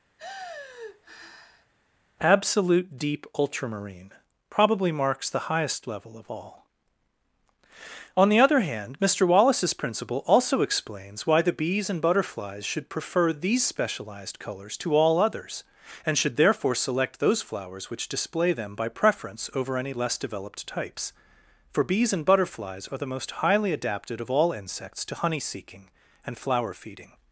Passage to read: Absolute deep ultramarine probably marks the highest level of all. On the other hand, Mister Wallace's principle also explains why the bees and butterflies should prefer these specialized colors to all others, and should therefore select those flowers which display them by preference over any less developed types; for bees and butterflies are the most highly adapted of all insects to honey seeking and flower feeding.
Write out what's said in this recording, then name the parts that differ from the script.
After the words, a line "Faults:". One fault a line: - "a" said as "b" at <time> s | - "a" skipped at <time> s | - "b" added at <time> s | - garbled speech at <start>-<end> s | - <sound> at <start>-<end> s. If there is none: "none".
Absolute deep ultramarine probably marks the highest level of all. On the other hand, Mister Wallace's principle also explains why the bees and butterflies should prefer these specialized colors to all others, and should therefore select those flowers which display them by preference over any less developed types; for bees and butterflies are the most highly adapted of all insects to honey seeking and flower feeding.
Faults:
- sigh at 0.2-1.7 s